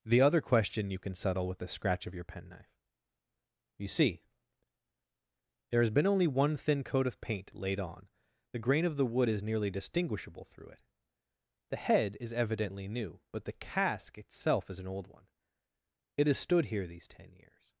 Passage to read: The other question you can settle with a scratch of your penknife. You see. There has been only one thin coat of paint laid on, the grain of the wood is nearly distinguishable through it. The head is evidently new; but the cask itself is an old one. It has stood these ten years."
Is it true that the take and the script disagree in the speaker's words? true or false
true